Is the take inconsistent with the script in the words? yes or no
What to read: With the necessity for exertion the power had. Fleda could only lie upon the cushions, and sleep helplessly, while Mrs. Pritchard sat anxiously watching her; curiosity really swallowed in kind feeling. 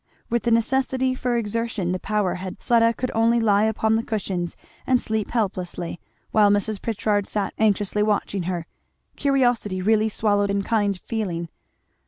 no